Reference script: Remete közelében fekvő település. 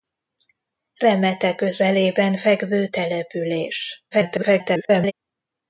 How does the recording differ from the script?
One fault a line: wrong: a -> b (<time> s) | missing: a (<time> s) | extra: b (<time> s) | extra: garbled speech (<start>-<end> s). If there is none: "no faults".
extra: garbled speech (4.1-5.1 s)